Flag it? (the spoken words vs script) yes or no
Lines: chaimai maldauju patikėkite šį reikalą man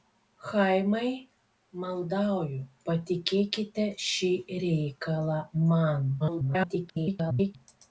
yes